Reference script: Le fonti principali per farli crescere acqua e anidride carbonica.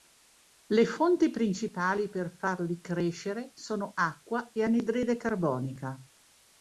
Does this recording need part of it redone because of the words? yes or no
yes